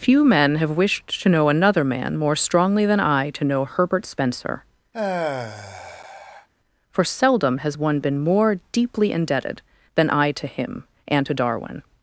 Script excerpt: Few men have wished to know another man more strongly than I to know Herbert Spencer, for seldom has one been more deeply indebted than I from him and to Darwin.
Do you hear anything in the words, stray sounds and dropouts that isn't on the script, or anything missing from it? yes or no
yes